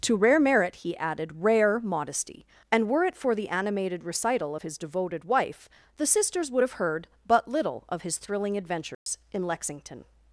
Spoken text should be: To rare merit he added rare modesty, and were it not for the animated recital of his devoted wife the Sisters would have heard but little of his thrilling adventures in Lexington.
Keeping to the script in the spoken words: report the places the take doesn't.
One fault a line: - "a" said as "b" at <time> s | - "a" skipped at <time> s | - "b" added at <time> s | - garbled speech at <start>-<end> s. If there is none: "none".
- "not" skipped at 3.1 s